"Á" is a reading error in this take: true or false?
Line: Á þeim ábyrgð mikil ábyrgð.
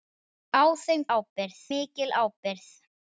false